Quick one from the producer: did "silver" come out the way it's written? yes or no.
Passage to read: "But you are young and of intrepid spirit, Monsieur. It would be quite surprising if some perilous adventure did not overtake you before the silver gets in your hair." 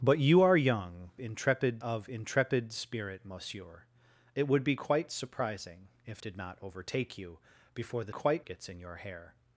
no